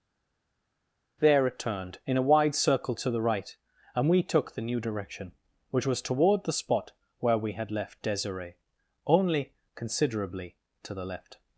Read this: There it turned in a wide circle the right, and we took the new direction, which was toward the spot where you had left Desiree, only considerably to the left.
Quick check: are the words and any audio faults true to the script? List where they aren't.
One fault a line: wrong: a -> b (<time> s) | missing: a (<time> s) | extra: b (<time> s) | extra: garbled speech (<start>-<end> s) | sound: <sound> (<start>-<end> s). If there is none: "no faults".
extra: to (2.9 s)
wrong: you -> we (7.4 s)